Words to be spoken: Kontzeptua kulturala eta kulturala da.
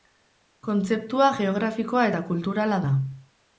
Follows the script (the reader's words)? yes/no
no